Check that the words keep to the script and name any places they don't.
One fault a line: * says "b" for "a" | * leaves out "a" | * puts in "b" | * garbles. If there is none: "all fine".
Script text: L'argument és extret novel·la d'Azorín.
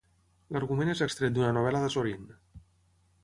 * puts in "d'una"